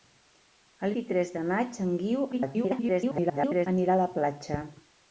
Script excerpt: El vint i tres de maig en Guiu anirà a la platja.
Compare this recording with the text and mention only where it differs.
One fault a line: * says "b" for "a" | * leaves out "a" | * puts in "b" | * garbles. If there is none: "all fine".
* leaves out "vint"
* garbles